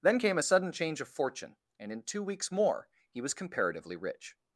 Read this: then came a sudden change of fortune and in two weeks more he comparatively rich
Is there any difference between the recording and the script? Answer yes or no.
yes